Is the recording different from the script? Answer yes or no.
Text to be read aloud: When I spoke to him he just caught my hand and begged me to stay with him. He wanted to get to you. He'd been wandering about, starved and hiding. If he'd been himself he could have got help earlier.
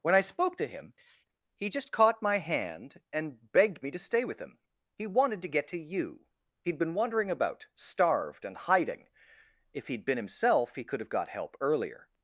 no